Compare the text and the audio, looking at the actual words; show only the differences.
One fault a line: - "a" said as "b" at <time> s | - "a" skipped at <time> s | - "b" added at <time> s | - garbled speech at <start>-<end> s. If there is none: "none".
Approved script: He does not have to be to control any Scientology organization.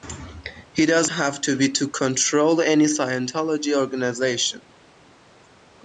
- "not" skipped at 1.1 s